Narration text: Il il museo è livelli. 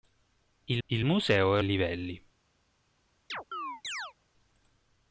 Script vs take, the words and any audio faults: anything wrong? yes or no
yes